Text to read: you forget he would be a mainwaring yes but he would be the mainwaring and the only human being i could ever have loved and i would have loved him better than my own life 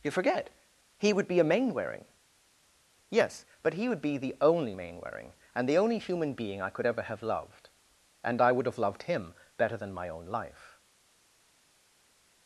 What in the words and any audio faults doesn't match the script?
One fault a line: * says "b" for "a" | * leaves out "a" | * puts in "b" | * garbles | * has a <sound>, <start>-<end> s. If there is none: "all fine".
* puts in "only"